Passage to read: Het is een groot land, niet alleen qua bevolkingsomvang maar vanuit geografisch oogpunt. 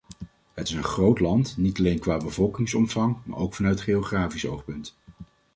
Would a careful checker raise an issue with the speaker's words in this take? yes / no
yes